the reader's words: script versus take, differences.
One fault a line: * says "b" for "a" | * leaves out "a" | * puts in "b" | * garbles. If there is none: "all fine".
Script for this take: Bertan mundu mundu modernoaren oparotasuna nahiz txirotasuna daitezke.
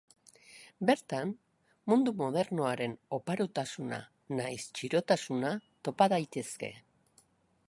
* leaves out "mundu"
* puts in "topa"